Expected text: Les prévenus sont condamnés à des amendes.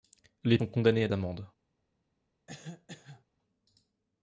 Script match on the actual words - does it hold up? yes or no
no